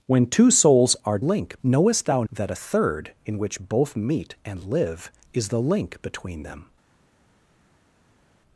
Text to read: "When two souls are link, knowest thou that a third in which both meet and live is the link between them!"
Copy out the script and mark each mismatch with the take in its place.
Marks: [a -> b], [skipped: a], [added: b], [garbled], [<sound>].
"When two souls are link, knowest thou that a third in which both meet and live is the link between them!"